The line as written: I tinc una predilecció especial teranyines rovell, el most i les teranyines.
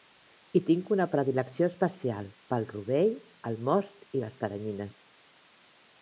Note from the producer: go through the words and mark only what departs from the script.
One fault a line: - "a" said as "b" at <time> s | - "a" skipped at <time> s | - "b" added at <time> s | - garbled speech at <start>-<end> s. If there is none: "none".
- "teranyines" said as "pel" at 2.5 s